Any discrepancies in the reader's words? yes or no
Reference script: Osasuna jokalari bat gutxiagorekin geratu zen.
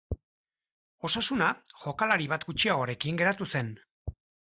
no